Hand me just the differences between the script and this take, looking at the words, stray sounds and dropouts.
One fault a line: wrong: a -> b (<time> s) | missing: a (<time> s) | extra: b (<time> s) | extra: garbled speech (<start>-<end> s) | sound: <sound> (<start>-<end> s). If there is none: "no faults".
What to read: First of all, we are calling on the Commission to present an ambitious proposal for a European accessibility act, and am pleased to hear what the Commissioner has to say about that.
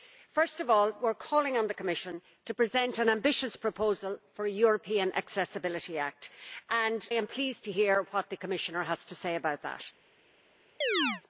sound: chirp (10.8-11.2 s)